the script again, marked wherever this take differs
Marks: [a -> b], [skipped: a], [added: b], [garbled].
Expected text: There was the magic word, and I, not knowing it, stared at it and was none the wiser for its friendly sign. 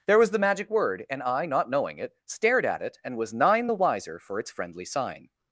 There was the magic word, and I, not knowing it, stared at it and was [none -> nine] the wiser for its friendly sign.